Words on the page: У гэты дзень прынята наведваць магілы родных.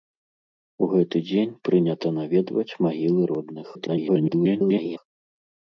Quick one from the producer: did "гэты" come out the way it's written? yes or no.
yes